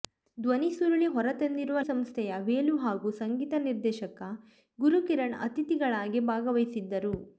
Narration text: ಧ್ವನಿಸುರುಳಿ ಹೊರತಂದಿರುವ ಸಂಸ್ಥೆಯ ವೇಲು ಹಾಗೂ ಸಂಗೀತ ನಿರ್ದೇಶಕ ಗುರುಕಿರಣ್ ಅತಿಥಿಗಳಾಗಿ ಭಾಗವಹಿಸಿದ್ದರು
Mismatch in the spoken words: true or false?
false